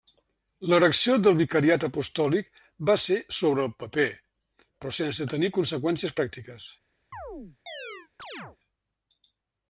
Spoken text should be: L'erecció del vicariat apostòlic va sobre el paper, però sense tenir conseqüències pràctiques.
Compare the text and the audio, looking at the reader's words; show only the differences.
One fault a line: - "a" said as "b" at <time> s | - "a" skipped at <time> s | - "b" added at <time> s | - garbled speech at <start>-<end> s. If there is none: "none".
- "ser" added at 3.0 s